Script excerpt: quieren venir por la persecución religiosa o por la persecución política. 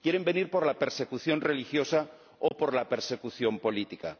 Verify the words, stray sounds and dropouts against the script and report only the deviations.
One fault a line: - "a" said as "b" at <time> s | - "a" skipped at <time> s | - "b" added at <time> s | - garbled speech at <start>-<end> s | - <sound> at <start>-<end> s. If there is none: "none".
- dropout at 2.5-2.5 s